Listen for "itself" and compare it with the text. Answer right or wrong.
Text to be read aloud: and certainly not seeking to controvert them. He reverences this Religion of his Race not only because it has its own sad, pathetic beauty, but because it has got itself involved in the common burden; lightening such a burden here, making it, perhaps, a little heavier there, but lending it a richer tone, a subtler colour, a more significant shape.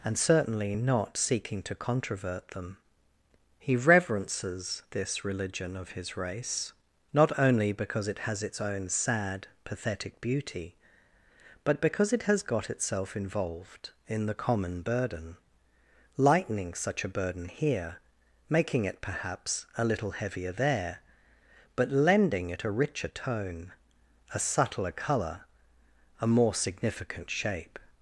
right